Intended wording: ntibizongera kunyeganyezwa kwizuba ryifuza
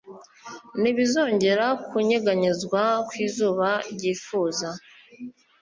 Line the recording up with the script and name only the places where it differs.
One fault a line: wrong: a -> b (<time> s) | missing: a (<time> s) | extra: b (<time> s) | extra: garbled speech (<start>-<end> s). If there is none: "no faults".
no faults